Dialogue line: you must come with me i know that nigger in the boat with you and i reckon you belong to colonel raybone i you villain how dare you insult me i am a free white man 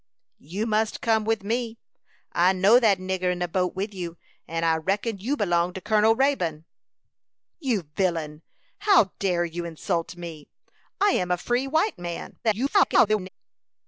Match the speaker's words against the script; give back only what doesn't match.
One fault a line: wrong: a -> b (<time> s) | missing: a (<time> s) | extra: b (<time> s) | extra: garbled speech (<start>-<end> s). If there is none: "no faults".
missing: i (6.7 s)
extra: garbled speech (12.4-13.3 s)